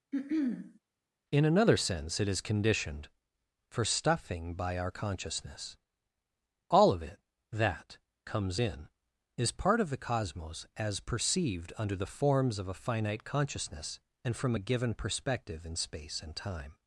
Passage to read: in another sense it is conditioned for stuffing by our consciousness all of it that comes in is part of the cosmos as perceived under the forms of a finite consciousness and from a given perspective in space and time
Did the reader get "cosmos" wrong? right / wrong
right